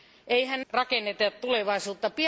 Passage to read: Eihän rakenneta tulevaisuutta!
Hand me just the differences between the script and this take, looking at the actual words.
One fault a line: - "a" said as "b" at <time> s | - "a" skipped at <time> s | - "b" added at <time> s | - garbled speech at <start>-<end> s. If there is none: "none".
none